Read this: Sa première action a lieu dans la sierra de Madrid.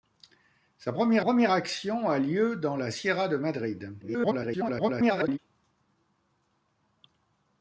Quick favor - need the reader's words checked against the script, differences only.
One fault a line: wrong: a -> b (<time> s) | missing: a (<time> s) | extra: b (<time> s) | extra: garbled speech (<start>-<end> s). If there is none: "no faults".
extra: première (1.2 s)
extra: garbled speech (4.0-5.4 s)